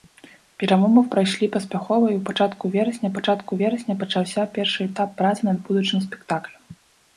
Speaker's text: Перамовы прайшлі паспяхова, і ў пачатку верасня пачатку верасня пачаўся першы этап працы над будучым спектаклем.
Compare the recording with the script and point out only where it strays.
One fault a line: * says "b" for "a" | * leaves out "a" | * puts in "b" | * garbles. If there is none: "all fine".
all fine